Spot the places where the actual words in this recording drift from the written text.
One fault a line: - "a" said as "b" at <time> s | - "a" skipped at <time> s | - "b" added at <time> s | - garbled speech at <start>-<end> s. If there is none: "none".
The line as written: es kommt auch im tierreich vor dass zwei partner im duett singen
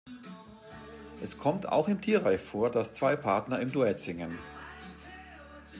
none